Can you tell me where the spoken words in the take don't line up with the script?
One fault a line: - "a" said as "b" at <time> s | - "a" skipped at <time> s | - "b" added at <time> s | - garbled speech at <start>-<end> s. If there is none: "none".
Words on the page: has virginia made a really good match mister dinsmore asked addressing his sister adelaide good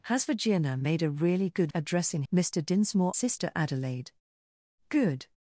- "match" said as "addressing" at 1.7 s
- "asked addressing his" skipped at 3.1 s